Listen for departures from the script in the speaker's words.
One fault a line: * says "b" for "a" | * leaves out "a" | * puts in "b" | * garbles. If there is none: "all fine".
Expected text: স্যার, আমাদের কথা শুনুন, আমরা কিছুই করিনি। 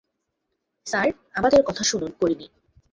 * leaves out "আমরা কিছুই"